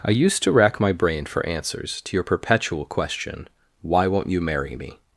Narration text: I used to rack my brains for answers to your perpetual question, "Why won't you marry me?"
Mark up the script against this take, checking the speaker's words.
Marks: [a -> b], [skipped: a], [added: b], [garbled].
I used to rack my [brains -> brain] for answers to your perpetual question, "Why won't you marry me?"